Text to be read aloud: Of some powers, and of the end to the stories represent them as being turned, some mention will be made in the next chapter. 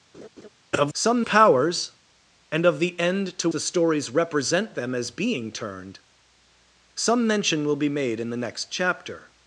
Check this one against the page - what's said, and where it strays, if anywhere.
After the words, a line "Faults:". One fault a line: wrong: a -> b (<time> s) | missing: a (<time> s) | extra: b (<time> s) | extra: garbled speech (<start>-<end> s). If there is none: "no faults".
Of some powers, and of the end to the stories represent them as being turned, some mention will be made in the next chapter.
Faults:
no faults